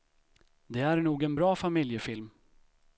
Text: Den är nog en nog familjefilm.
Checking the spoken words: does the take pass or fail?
fail